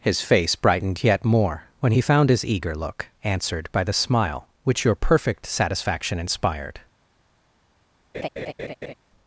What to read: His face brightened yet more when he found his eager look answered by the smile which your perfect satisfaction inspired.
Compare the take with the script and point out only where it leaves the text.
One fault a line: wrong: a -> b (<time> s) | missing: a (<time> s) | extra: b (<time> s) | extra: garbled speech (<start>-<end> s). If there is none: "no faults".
no faults